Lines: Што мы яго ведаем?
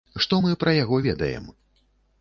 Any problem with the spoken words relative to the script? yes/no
yes